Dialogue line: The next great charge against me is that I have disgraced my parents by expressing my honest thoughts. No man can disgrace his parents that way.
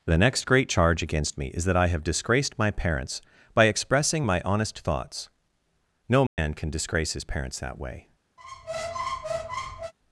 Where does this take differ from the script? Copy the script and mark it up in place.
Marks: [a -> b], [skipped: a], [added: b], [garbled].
The next great charge against me is that I have disgraced my parents by expressing my honest thoughts. No man can disgrace his parents that way.